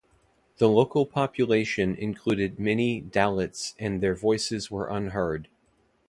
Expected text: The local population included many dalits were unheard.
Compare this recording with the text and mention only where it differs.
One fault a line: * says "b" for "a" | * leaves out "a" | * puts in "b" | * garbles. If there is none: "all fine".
* puts in "and their voices"